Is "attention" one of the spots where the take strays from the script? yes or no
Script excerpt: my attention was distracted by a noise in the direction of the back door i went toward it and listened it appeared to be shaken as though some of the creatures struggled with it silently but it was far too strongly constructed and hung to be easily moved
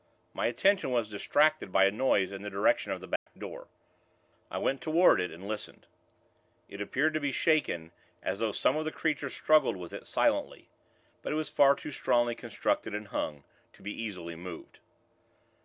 no